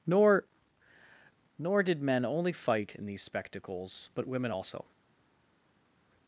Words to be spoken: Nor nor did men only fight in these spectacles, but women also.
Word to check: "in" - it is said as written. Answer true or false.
true